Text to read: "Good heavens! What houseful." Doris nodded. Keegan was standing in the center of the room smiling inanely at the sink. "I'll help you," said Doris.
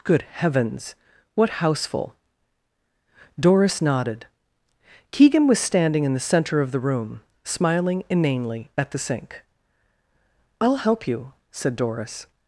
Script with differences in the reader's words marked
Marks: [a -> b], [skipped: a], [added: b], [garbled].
"Good heavens! What houseful." Doris nodded. Keegan was standing in the center of the room smiling inanely at the sink. "I'll help you," said Doris.